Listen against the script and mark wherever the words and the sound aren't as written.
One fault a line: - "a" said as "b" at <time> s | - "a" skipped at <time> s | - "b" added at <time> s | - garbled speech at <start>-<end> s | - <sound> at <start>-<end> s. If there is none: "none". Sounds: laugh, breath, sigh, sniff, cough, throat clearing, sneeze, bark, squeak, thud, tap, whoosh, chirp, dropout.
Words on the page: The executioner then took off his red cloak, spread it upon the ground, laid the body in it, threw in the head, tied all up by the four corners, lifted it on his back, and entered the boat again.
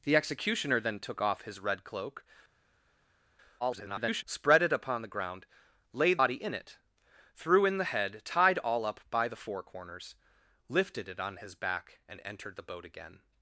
- garbled speech at 3.6-4.2 s
- "the" skipped at 6.2 s